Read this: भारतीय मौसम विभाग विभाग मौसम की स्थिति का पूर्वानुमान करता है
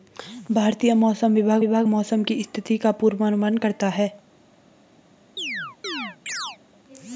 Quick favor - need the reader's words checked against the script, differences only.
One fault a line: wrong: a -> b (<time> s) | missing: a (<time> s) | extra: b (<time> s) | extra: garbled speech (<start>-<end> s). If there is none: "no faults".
no faults